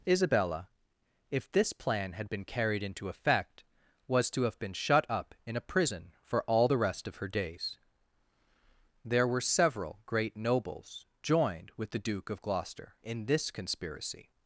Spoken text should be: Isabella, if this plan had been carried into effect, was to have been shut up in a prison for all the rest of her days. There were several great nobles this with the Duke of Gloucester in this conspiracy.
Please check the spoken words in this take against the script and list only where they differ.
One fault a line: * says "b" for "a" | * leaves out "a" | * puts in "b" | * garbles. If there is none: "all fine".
* says "joined" for "this"